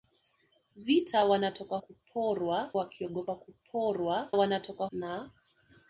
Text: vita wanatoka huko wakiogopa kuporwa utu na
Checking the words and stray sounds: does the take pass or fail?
fail